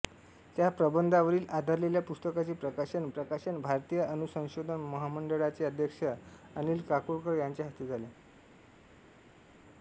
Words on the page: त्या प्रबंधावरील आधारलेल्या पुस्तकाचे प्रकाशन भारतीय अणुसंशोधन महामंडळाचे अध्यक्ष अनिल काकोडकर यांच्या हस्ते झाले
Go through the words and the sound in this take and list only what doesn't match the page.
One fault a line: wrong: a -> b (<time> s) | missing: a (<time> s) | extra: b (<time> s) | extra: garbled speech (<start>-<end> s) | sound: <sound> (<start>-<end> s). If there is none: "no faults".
extra: प्रकाशन (3.1 s)